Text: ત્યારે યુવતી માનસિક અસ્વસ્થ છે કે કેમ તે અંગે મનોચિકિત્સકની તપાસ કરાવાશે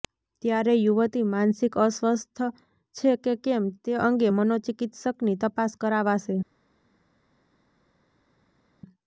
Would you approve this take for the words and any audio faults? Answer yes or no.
yes